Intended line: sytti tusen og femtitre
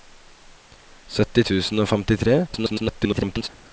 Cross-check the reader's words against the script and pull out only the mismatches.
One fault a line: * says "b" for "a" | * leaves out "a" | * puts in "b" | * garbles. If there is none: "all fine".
* garbles